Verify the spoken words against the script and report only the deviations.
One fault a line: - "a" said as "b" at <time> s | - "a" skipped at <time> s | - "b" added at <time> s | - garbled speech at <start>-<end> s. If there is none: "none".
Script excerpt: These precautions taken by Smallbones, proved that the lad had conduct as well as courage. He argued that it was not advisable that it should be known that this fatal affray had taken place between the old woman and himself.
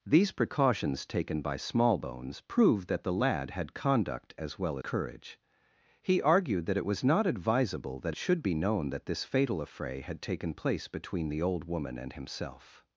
- "as" skipped at 4.8 s
- "it" skipped at 8.2 s